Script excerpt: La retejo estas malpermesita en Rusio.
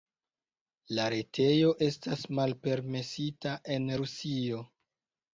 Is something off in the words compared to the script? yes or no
no